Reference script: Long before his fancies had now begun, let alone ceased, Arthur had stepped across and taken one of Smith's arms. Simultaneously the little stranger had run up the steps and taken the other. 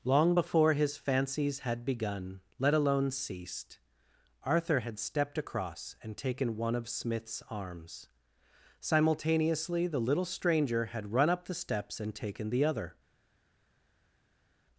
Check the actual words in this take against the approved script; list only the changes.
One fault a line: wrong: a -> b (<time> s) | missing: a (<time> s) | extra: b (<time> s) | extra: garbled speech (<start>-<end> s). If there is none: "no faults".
missing: now (1.8 s)